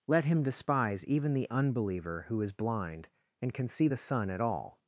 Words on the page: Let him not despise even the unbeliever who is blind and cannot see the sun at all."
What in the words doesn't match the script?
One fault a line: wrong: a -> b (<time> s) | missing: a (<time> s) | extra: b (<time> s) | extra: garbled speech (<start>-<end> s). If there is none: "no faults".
missing: not (0.4 s)
wrong: cannot -> can (3.5 s)